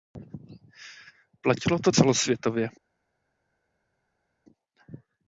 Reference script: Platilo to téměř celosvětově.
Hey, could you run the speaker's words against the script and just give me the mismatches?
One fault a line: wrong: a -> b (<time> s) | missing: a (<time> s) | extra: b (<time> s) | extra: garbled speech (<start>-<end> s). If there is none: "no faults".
missing: téměř (1.9 s)